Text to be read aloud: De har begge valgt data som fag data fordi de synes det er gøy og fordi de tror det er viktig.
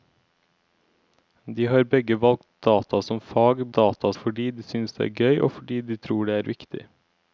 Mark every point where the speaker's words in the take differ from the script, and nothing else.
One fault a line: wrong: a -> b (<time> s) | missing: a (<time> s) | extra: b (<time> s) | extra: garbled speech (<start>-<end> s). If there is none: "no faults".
no faults